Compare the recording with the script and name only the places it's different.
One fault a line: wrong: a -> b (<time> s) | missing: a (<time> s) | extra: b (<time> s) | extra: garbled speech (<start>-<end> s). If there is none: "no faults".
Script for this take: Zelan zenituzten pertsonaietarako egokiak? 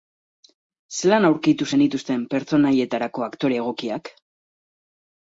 extra: aurkitu (1.3 s)
extra: aktore (3.3 s)